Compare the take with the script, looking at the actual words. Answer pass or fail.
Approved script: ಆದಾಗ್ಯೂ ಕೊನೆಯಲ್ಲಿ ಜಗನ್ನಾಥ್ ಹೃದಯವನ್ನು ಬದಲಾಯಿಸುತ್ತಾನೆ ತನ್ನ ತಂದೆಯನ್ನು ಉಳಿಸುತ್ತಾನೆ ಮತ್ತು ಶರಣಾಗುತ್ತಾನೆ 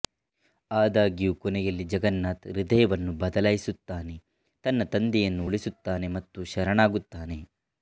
pass